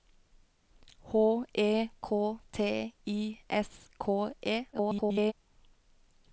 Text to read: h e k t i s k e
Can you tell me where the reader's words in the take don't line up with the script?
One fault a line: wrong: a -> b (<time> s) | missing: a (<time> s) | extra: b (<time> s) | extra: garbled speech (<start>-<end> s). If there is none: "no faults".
extra: garbled speech (4.7-5.3 s)